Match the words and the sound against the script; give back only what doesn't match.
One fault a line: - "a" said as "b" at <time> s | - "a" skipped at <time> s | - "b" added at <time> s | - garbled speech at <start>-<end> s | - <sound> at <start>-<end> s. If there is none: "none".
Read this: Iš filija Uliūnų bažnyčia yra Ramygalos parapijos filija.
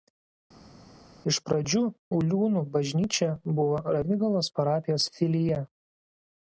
- "filija" said as "pradžių" at 1.5 s
- "yra" said as "buvo" at 3.6 s